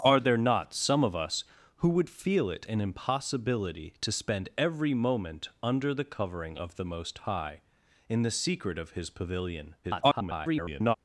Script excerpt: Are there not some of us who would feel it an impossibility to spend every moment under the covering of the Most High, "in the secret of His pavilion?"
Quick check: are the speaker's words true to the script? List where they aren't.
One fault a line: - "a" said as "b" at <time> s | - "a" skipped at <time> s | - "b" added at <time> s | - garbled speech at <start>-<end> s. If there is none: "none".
- garbled speech at 9.8-11.0 s